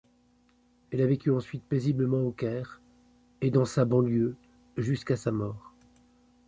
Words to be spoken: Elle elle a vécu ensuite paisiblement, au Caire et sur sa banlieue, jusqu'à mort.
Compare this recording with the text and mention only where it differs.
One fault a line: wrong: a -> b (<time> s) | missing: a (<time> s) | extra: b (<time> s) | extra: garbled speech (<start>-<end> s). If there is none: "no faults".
missing: elle (1.0 s)
wrong: sur -> dans (3.5 s)
extra: sa (5.2 s)